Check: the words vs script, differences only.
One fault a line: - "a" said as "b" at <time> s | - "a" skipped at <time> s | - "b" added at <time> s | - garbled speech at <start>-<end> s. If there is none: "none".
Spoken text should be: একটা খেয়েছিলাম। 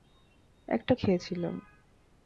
none